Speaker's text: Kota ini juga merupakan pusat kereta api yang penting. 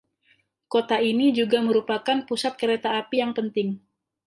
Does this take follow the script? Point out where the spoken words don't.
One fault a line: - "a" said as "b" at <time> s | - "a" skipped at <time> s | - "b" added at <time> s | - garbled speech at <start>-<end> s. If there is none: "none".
none